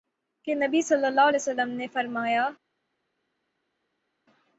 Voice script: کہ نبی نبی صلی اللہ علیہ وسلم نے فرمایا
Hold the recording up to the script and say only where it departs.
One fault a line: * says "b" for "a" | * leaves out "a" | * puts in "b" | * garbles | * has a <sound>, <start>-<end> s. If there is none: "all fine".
* leaves out "نبی"